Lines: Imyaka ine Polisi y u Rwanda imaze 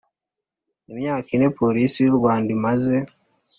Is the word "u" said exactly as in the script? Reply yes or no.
yes